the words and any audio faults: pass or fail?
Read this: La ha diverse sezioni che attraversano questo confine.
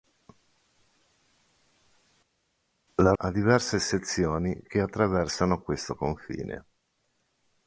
pass